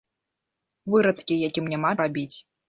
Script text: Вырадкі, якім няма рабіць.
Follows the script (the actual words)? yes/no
yes